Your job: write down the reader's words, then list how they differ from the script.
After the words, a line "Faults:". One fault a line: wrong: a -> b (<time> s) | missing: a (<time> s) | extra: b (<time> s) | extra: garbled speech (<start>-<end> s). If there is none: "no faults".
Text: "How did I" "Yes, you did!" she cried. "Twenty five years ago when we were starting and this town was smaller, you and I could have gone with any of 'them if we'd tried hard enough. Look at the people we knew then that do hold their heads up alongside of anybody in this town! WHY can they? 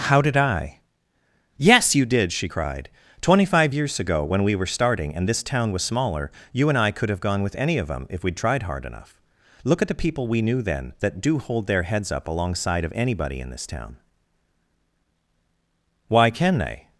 "How did I" "Yes, you did!" she cried. "Twenty five years ago when we were starting and this town was smaller, you and I could have gone with any of 'them if we'd tried hard enough. Look at the people we knew then that do hold their heads up alongside of anybody in this town! WHY can they?
Faults:
no faults